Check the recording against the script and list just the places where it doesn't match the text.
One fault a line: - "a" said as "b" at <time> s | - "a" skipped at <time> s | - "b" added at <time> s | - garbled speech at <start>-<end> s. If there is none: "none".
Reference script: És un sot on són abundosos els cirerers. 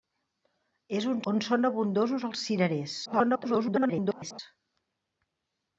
- "sot" skipped at 1.2 s
- garbled speech at 3.0-4.4 s